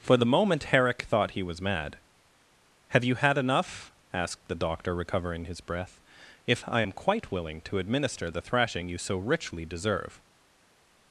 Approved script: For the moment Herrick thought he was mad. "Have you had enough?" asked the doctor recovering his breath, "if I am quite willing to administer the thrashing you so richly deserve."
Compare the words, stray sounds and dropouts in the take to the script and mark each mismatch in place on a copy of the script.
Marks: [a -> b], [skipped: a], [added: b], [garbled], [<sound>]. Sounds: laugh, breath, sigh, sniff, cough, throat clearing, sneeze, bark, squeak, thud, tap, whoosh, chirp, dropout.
For the moment Herrick thought he was mad. "Have you had enough?" asked the doctor recovering his breath, "if I am quite willing to administer the thrashing you so richly deserve."